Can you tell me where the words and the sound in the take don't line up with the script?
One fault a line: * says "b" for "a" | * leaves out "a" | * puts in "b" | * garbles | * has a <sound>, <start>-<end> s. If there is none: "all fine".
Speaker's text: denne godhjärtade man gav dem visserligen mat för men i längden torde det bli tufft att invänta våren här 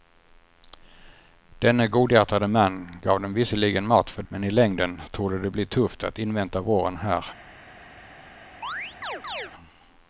* has a chirp, 8.6-9.5 s